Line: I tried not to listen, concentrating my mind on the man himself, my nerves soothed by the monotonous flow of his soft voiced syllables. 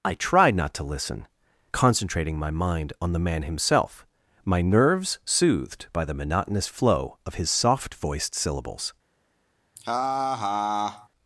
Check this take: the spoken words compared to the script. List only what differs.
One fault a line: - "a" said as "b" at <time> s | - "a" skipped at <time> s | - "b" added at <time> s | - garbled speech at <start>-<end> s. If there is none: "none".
none